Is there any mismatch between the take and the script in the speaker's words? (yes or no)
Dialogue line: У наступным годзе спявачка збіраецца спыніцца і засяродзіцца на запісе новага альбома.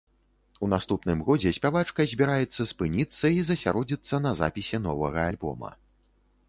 no